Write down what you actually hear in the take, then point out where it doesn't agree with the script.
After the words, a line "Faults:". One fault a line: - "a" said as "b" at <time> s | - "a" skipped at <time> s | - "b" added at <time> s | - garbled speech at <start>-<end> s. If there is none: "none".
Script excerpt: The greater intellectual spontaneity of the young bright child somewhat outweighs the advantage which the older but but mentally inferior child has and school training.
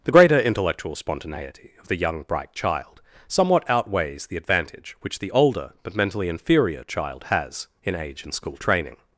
The greater intellectual spontaneity of the young bright child somewhat outweighs the advantage which the older but mentally inferior child has in age and school training.
Faults:
- "but" skipped at 6.0 s
- "in age" added at 7.8 s